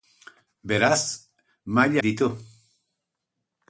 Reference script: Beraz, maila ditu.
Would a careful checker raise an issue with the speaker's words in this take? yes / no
no